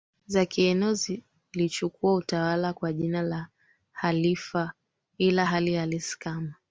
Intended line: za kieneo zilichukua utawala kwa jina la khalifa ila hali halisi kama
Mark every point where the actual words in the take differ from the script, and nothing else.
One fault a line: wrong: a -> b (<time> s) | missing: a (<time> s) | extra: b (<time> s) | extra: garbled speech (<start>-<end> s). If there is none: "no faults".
no faults